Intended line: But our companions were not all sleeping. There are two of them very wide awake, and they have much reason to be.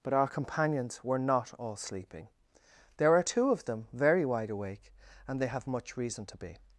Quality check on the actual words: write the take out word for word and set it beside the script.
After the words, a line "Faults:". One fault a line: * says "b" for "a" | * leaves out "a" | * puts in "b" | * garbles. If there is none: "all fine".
But our companions were not all sleeping. There are two of them very wide awake, and they have much reason to be.
Faults:
all fine